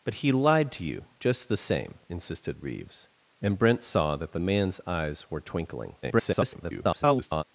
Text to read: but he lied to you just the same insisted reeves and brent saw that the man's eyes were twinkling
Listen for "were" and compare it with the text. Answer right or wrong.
right